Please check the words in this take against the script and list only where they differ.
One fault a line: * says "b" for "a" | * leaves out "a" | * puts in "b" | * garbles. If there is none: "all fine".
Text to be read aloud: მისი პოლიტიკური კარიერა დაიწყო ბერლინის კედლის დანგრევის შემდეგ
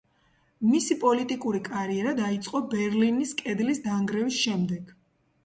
all fine